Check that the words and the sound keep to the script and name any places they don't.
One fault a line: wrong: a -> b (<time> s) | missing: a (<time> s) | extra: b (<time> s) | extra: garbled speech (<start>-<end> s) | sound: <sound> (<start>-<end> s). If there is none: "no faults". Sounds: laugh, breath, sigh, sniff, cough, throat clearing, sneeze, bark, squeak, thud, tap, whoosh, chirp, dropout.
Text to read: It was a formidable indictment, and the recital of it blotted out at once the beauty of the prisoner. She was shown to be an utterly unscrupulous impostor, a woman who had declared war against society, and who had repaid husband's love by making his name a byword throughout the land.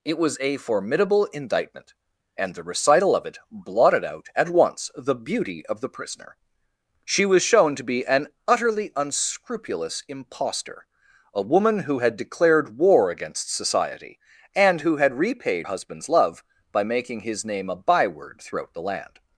no faults